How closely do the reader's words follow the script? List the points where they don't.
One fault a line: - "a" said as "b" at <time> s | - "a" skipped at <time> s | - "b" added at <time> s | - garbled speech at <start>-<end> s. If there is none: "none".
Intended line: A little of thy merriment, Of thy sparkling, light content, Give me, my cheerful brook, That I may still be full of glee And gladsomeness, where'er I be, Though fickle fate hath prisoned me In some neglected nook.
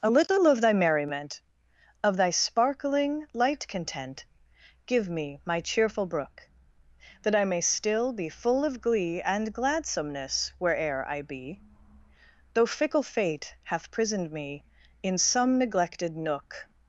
none